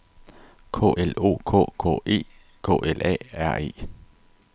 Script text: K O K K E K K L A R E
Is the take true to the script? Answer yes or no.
no